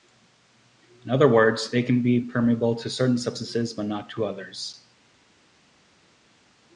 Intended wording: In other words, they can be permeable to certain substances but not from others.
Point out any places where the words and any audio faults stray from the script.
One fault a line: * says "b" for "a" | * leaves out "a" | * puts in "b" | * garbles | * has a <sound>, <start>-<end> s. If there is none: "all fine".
* says "to" for "from"